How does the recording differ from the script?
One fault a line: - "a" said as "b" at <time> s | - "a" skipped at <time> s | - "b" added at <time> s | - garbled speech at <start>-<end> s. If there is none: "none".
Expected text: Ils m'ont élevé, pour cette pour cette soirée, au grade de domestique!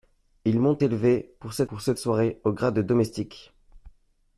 none